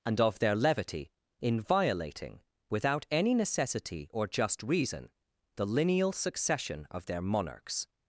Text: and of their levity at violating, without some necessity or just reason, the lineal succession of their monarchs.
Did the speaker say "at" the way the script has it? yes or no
no